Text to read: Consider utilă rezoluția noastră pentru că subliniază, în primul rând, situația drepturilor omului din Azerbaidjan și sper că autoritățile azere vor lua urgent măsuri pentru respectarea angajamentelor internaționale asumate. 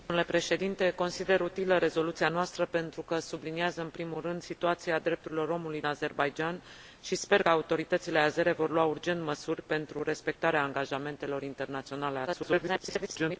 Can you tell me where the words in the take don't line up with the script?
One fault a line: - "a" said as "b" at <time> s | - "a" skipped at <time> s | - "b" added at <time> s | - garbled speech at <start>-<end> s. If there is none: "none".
- "din" skipped at 5.8 s
- "că" skipped at 7.4 s
- garbled speech at 12.3-13.4 s